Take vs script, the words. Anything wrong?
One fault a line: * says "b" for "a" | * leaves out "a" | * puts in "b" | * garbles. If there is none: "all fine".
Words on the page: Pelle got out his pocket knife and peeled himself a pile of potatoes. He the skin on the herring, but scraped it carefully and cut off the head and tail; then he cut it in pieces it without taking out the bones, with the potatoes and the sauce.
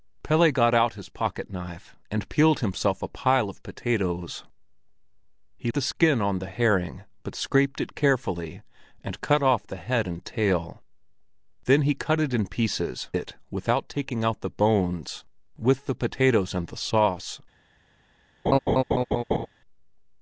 all fine